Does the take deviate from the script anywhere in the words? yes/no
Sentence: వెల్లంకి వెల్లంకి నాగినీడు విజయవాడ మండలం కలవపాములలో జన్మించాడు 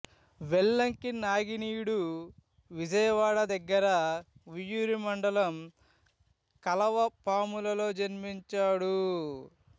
yes